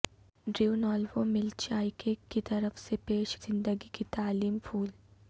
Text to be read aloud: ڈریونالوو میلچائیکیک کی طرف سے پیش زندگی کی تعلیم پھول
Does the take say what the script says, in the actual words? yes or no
yes